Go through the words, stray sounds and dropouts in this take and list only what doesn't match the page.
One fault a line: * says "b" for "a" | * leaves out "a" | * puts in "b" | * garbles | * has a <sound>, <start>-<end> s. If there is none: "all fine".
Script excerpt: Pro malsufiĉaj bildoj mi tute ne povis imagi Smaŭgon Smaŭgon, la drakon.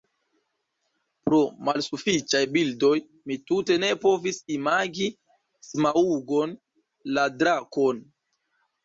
* leaves out "Smaŭgon"